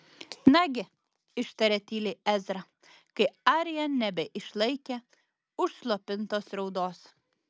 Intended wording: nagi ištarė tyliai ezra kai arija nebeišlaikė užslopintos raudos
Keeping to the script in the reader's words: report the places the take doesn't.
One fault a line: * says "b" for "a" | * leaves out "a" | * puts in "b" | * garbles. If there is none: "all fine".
all fine